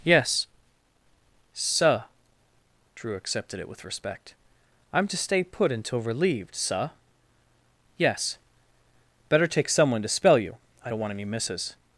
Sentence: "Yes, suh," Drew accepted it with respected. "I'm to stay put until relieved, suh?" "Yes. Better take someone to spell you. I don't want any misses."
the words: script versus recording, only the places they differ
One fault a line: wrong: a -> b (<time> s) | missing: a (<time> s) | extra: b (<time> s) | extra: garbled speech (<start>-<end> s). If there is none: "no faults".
wrong: respected -> respect (3.8 s)